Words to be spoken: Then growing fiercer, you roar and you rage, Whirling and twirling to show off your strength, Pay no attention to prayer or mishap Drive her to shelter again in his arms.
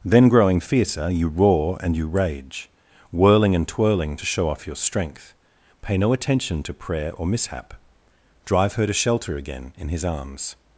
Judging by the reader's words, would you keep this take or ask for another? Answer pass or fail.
pass